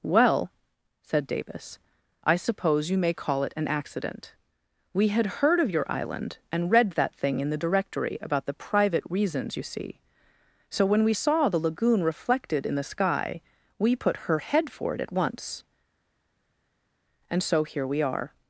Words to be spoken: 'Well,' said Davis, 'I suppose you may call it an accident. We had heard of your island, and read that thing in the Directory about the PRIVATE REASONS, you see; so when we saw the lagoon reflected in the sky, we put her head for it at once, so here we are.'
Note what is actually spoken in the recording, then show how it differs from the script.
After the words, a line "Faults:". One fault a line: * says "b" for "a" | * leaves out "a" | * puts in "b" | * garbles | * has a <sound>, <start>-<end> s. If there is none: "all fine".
'Well,' said Davis, 'I suppose you may call it an accident. We had heard of your island, and read that thing in the Directory about the PRIVATE REASONS, you see; so when we saw the lagoon reflected in the sky, we put her head for it at once, and so here we are.'
Faults:
* puts in "and"